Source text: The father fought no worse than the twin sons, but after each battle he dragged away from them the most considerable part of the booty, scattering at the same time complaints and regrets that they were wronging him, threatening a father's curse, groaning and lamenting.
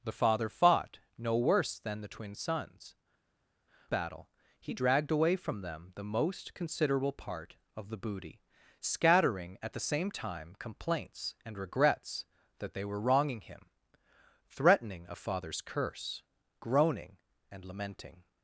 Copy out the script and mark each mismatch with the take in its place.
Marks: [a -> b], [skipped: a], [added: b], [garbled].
The father fought no worse than the twin sons, [skipped: but after each] battle he dragged away from them the most considerable part of the booty, scattering at the same time complaints and regrets that they were wronging him, threatening a father's curse, groaning and lamenting.